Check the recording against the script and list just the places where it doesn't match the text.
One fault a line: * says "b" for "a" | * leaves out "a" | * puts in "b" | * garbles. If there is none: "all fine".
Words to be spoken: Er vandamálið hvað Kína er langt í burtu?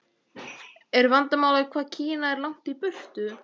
all fine